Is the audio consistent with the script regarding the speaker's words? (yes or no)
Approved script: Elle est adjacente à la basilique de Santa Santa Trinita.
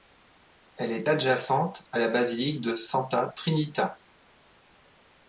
no